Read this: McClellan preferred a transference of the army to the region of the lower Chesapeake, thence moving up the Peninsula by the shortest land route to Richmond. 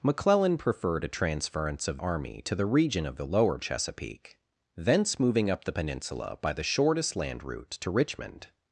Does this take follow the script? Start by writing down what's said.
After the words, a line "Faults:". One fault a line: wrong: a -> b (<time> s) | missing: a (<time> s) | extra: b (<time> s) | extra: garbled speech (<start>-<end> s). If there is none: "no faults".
McClellan preferred a transference of army to the region of the lower Chesapeake, thence moving up the Peninsula by the shortest land route to Richmond.
Faults:
missing: the (2.0 s)